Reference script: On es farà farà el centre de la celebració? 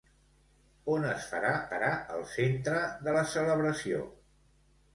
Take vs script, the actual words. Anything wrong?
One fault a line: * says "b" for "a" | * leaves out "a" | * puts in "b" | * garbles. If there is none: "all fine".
all fine